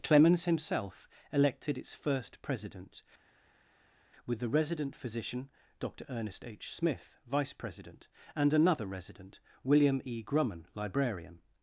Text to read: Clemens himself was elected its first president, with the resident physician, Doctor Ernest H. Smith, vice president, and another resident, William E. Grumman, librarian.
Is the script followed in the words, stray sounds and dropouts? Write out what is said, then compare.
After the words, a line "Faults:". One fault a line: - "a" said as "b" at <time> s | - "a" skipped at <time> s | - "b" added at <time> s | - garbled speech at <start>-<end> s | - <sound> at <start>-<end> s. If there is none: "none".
Clemens himself elected its first president, with the resident physician, Doctor Ernest H. Smith, vice president, and another resident, William E. Grumman, librarian.
Faults:
- "was" skipped at 1.1 s